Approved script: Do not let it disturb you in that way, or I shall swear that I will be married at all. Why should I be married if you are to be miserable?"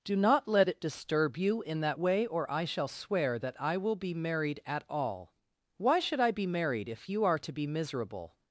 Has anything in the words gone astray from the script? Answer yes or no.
no